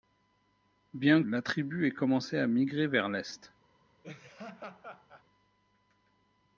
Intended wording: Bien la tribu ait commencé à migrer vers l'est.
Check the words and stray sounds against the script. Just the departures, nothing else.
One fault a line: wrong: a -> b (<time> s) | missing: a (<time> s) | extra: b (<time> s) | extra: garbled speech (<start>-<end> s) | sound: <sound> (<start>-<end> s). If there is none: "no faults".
sound: laugh (4.0-5.2 s)